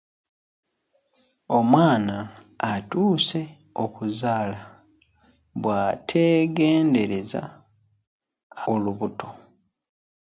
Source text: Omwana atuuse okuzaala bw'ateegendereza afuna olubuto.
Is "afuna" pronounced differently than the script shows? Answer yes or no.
yes